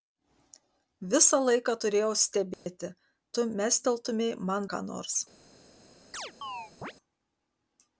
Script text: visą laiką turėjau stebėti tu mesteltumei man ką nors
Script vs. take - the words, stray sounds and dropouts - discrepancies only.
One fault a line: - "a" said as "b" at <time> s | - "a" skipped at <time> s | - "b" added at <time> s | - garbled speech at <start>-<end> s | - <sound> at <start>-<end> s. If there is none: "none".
- dropout at 2.5-2.7 s
- chirp at 6.1-6.9 s